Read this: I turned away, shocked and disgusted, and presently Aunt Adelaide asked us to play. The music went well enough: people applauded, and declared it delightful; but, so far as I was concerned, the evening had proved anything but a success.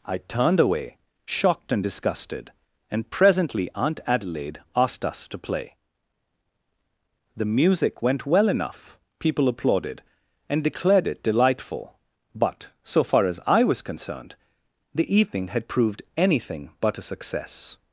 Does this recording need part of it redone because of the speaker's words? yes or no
no